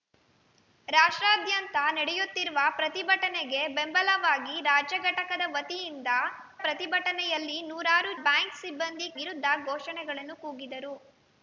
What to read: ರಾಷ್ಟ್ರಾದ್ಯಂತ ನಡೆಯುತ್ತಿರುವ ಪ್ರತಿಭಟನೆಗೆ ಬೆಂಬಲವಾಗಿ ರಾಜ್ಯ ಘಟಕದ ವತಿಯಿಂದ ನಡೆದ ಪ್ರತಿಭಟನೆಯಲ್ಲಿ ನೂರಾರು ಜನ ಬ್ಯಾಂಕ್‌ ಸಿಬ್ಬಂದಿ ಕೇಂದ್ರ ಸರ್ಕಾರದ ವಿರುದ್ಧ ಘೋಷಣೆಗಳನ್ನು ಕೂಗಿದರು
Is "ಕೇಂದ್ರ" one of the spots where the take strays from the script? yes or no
yes